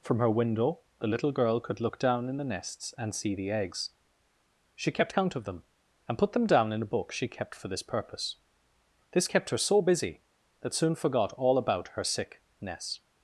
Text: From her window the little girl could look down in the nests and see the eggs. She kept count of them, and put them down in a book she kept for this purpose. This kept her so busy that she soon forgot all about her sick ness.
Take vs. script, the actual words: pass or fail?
fail